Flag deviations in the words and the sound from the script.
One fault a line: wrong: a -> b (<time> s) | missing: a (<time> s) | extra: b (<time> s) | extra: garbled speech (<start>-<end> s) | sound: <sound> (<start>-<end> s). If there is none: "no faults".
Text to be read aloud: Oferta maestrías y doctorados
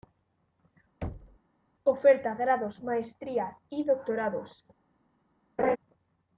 sound: thud (1.0-1.4 s)
extra: grados (2.3 s)
sound: laugh (5.6-5.8 s)